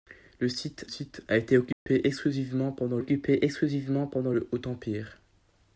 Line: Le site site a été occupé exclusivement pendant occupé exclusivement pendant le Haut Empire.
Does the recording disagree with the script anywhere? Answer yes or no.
no